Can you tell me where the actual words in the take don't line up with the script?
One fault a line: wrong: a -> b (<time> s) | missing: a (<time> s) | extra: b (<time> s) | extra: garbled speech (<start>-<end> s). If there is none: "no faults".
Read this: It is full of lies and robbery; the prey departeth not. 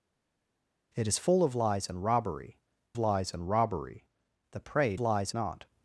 extra: lies and robbery (3.0 s)
wrong: departeth -> lies (5.0 s)